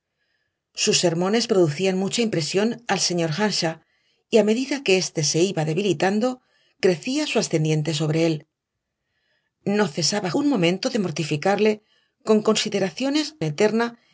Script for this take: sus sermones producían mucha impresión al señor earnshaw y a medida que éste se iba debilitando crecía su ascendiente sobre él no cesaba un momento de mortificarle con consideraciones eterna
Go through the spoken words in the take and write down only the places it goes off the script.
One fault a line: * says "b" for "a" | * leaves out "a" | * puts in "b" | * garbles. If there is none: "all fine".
all fine